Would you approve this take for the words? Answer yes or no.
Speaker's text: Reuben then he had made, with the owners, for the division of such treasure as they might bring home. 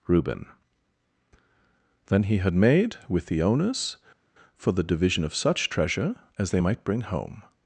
yes